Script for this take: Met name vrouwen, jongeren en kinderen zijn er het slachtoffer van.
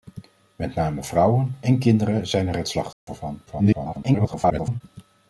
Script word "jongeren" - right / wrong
wrong